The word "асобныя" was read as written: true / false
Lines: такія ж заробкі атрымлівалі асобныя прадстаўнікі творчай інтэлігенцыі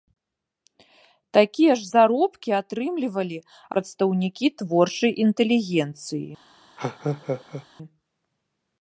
false